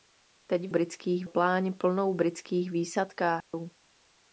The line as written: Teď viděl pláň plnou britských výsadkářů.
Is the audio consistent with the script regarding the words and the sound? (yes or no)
no